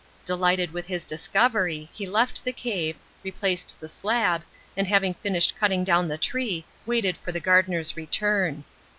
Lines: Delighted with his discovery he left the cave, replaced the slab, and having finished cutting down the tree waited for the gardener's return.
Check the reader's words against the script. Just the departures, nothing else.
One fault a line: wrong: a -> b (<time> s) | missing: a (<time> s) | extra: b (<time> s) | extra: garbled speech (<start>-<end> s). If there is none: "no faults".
no faults